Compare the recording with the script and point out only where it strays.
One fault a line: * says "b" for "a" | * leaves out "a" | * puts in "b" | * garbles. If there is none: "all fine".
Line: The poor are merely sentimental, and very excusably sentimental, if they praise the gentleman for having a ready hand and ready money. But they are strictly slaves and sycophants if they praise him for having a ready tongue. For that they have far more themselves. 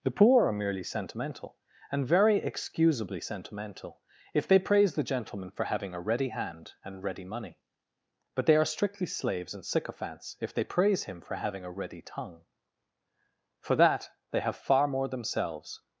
all fine